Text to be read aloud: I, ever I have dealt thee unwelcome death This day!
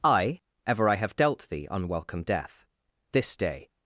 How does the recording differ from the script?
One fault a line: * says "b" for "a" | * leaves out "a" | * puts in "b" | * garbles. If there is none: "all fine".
all fine